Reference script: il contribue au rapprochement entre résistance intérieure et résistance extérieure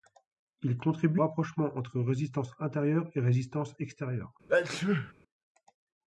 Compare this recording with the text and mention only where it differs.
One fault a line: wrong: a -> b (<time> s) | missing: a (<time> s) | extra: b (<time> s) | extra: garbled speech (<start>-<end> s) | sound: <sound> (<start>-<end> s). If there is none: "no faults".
missing: au (1.2 s)
sound: sneeze (4.5-5.1 s)